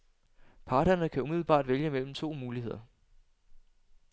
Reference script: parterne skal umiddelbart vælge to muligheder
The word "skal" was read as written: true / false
false